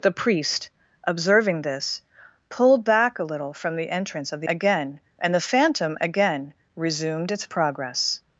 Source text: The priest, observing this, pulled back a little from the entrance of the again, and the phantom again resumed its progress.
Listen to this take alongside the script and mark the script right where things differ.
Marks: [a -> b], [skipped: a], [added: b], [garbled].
The priest, observing this, pulled back a little from the entrance of the again, and the phantom again resumed its progress.